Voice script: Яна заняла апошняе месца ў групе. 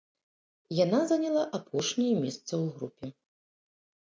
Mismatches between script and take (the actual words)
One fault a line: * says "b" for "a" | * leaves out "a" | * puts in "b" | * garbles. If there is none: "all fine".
all fine